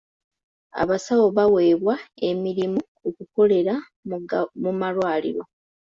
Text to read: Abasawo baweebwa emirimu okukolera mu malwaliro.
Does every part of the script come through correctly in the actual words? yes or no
yes